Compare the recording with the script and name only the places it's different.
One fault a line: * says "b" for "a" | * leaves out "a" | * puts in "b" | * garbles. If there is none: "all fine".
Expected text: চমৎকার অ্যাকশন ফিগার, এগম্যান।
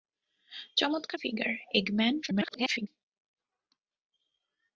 * leaves out "অ্যাকশন"
* garbles